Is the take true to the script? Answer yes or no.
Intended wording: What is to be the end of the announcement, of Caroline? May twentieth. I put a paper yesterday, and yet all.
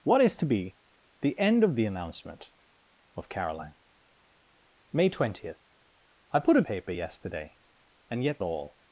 yes